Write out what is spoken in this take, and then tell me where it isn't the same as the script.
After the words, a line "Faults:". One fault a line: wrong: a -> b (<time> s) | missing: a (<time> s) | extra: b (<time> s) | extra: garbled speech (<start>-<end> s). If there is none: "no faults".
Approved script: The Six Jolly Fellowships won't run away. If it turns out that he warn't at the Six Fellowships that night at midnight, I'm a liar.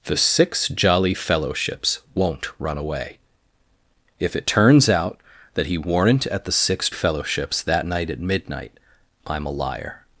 The Six Jolly Fellowships won't run away. If it turns out that he warn't at the Six Fellowships that night at midnight, I'm a liar.
Faults:
no faults